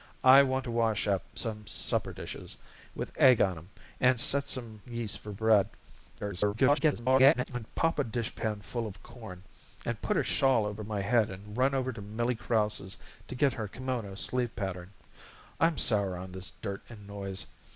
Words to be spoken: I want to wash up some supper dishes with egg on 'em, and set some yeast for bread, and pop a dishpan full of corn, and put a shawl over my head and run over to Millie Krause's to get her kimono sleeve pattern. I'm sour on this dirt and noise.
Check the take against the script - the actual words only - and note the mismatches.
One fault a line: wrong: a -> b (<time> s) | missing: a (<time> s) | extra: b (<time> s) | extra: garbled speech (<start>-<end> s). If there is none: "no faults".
extra: garbled speech (6.2-7.5 s)